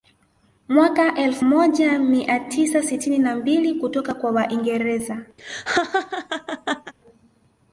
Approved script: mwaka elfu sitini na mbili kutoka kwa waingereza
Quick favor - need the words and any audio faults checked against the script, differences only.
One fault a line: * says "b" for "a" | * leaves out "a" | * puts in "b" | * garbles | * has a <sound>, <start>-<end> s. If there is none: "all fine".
* puts in "moja mia tisa"
* has a laugh, 5.4-6.9 s